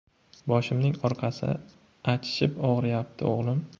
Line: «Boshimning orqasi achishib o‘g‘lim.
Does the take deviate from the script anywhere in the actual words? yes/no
yes